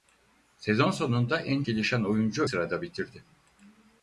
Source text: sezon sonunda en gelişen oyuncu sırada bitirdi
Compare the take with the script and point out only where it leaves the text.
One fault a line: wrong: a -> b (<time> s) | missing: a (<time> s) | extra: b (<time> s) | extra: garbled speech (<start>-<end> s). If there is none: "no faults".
no faults